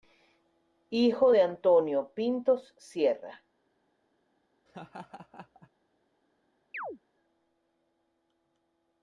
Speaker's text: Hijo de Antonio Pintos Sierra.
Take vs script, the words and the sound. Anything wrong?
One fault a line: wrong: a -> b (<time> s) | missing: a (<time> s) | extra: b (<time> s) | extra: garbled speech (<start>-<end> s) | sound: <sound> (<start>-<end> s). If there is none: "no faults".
sound: laugh (4.7-5.7 s)
sound: chirp (6.7-7.0 s)